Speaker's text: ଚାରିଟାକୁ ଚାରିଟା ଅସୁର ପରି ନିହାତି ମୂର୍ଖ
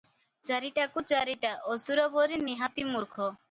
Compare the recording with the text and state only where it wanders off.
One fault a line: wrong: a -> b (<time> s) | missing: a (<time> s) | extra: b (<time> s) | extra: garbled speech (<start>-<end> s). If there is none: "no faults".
no faults